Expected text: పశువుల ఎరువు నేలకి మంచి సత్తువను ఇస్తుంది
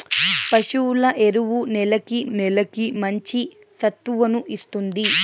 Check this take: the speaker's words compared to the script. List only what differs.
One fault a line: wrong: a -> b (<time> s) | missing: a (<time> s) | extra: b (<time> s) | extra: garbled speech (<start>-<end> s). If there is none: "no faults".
extra: నేలకి (2.4 s)